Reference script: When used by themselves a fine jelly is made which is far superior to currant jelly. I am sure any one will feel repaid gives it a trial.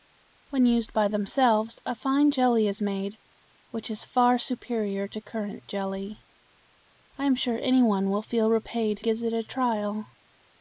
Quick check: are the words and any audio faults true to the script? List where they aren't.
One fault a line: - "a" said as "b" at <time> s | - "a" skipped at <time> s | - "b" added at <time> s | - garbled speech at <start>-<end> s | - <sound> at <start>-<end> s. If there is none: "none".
none